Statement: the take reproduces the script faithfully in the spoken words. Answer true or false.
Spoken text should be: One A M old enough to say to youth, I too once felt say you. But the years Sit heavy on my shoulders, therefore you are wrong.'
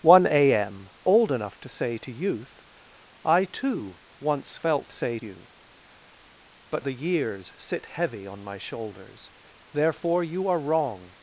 true